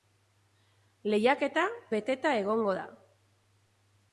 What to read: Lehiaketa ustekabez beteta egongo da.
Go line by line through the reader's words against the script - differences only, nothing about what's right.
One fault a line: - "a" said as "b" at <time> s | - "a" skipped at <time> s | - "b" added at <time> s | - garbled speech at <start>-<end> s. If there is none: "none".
- "ustekabez" skipped at 1.7 s